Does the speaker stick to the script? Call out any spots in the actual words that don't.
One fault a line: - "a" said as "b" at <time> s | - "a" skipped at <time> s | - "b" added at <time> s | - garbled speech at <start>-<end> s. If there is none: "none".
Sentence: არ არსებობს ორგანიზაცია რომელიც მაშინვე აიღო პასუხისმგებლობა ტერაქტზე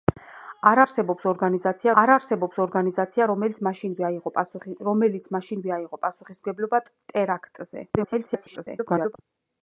- "არ არსებობს ორგანიზაცია" added at 2.0 s
- garbled speech at 8.0-9.2 s